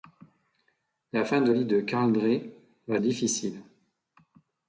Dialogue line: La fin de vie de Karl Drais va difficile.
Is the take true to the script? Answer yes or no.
yes